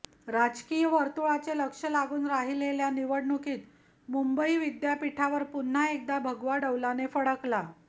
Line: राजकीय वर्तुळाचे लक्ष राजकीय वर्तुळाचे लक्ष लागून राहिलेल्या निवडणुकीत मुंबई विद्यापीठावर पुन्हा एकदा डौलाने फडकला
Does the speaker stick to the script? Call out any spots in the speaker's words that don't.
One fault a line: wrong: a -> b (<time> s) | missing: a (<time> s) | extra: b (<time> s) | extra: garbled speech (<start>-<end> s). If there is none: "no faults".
missing: राजकीय वर्तुळाचे लक्ष (1.8 s)
extra: भगवा (6.2 s)